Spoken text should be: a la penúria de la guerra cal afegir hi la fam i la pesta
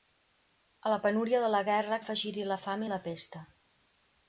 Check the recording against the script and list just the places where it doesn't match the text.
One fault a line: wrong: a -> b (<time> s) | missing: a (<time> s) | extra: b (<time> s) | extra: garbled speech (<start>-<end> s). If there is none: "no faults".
missing: cal (2.0 s)